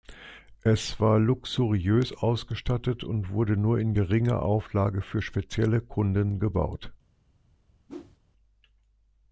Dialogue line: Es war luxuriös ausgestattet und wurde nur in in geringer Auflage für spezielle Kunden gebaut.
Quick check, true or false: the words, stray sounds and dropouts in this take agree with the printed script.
false